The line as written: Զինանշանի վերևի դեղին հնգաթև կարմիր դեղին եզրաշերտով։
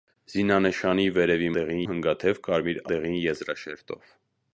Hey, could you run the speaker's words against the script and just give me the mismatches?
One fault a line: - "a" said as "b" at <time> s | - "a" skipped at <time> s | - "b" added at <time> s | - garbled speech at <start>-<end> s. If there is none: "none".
none